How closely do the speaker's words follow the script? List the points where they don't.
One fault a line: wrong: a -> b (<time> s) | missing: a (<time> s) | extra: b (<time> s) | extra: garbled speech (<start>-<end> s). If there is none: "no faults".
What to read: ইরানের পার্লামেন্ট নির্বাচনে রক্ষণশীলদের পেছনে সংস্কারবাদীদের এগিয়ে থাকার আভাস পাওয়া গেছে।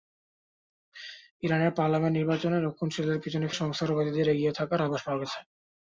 no faults